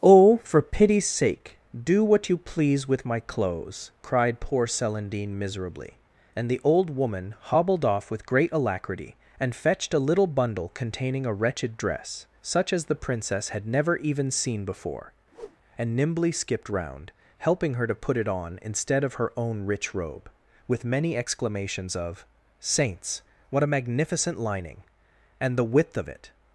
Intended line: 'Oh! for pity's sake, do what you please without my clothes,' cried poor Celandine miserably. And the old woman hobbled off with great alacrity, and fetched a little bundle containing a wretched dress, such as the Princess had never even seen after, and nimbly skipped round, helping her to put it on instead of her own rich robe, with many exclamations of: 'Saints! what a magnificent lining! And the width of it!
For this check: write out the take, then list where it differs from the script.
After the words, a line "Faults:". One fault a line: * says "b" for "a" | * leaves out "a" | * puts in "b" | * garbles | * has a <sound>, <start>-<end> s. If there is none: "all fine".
'Oh! for pity's sake, do what you please with my clothes,' cried poor Celandine miserably. And the old woman hobbled off with great alacrity, and fetched a little bundle containing a wretched dress, such as the Princess had never even seen before, and nimbly skipped round, helping her to put it on instead of her own rich robe, with many exclamations of: 'Saints! what a magnificent lining! And the width of it!
Faults:
* says "with" for "without"
* says "before" for "after"
* has a whoosh, 15.3-15.6 s